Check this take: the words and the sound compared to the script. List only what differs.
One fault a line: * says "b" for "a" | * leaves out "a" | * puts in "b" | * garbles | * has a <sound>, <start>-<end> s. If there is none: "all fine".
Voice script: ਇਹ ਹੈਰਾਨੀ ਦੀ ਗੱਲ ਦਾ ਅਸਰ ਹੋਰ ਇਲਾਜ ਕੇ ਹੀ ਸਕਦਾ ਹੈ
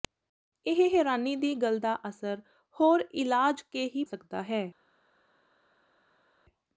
all fine